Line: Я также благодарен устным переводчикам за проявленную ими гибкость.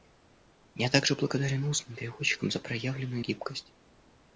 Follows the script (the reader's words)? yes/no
no